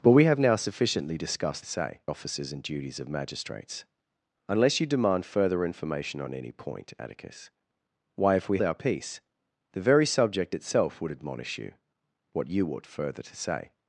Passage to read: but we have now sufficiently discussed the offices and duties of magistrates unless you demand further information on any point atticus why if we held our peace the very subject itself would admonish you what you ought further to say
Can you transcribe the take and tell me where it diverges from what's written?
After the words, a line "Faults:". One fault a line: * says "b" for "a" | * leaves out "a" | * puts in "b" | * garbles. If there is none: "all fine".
but we have now sufficiently discussed say offices and duties of magistrates unless you demand further information on any point atticus why if we our peace the very subject itself would admonish you what you ought further to say
Faults:
* says "say" for "the"
* leaves out "held"